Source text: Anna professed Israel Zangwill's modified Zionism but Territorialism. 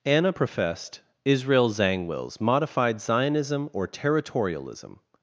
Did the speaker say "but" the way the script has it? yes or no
no